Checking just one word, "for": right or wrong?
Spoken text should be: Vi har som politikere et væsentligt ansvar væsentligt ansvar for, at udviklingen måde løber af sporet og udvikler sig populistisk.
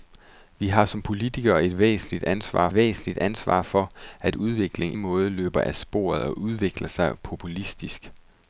right